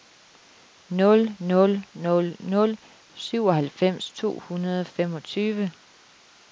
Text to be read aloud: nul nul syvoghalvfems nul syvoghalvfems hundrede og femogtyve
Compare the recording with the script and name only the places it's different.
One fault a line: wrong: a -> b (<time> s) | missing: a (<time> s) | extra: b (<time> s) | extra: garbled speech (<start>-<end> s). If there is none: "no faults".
wrong: syvoghalvfems -> nul (1.9 s)
extra: to (4.1 s)